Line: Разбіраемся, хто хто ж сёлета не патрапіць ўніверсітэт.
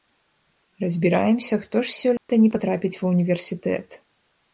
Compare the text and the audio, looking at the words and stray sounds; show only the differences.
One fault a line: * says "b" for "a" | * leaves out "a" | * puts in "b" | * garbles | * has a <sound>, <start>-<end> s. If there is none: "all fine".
* leaves out "хто"
* has a dropout, 2.2-2.3 s
* puts in "ва"